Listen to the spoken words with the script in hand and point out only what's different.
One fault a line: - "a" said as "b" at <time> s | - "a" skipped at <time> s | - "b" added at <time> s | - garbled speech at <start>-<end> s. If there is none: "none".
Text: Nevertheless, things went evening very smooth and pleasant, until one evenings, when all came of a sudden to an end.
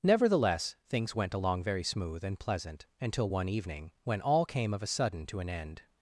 - "evening" said as "along" at 1.3 s
- "evenings" said as "evening" at 3.5 s